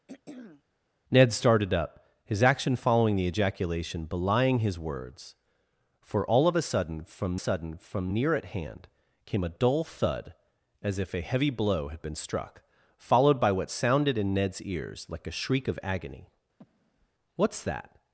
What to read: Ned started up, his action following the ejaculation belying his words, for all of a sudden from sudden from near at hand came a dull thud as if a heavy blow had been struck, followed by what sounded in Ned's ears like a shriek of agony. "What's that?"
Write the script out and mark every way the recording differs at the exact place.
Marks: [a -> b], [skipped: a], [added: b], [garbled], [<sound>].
[throat clearing] Ned started up, his action following the ejaculation belying his words, for all of a sudden from sudden from near at hand came a dull thud as if a heavy blow had been struck, followed by what sounded in Ned's ears like a shriek of agony. [breath] "What's that?"